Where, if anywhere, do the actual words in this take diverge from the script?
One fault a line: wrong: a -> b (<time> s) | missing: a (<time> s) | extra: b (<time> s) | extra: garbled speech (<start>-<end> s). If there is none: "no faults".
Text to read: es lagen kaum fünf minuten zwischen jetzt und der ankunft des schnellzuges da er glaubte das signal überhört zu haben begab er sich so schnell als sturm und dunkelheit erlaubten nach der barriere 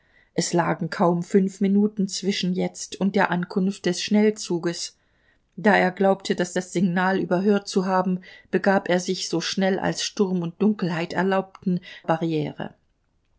extra: das (6.5 s)
missing: nach der (11.8 s)